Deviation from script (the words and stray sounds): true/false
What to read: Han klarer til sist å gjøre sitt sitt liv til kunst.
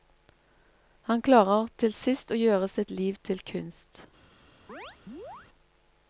true